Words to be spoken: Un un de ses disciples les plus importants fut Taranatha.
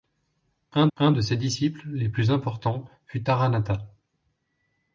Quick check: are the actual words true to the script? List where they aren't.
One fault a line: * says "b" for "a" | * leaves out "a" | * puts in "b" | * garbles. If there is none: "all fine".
all fine